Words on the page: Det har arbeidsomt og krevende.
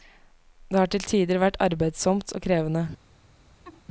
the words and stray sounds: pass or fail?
fail